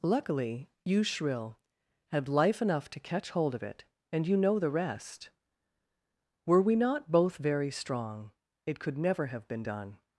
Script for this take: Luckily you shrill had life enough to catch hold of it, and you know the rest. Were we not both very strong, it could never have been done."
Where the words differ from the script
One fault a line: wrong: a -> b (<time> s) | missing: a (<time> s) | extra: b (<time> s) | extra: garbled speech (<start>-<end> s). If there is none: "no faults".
no faults